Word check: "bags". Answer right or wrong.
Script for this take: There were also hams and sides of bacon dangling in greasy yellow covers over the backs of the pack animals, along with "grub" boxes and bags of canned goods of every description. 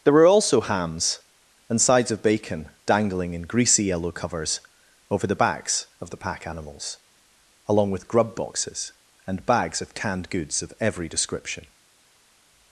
right